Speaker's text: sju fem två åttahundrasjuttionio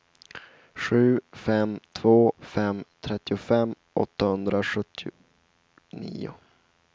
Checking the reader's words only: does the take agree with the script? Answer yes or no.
no